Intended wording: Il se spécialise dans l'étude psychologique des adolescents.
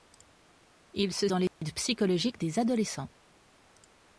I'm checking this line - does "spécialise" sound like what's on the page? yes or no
no